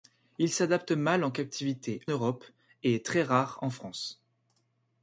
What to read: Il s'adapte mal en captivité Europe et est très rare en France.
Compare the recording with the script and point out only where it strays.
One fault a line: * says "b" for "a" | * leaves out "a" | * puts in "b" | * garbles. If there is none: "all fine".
all fine